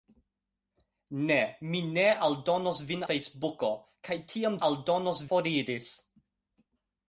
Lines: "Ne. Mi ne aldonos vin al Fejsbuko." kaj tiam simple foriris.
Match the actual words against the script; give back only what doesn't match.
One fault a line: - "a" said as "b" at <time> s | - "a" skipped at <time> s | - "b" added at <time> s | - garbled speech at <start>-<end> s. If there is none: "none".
- "al" skipped at 3.0 s
- "simple" said as "aldonos" at 4.7 s